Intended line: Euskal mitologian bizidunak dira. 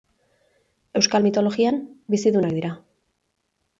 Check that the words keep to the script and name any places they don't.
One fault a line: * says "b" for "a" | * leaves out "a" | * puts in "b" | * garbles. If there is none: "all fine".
all fine